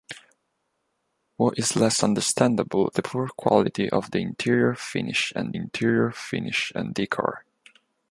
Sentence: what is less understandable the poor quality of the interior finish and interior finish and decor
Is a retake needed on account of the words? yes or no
no